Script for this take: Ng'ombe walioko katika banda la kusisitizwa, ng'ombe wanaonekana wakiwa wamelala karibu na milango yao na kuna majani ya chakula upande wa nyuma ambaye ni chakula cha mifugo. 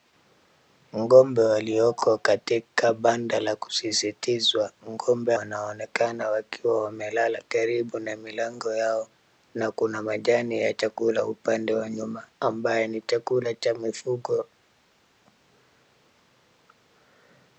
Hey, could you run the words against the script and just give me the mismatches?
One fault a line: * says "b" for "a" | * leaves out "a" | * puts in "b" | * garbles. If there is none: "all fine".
all fine